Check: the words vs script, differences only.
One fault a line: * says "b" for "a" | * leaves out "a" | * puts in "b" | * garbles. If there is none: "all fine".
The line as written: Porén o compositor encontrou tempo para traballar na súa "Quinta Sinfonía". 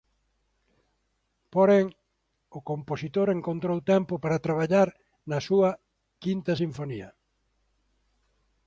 all fine